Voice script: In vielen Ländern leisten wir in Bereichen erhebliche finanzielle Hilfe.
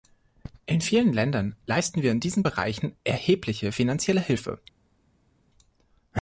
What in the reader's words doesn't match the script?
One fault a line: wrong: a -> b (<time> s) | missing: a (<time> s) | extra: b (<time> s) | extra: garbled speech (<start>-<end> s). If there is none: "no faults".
extra: diesen (2.2 s)